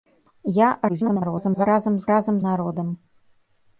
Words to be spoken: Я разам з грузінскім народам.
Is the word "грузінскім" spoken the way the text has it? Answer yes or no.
no